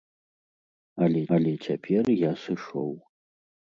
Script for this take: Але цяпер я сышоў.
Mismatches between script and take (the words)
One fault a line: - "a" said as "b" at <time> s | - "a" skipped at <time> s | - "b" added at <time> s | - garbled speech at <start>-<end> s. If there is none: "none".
- "але" added at 1.4 s